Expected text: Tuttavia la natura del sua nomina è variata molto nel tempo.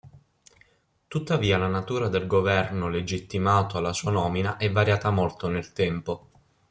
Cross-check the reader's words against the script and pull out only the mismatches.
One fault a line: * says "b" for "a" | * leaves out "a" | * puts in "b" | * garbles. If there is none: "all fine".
* puts in "governo legittimato alla"